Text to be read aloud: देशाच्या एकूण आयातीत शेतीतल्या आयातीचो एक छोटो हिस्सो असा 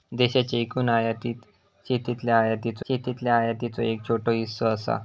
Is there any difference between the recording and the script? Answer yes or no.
yes